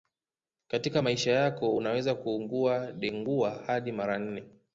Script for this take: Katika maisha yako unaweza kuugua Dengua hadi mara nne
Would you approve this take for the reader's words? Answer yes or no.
yes